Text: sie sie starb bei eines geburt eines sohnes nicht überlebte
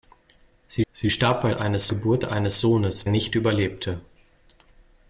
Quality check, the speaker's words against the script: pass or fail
pass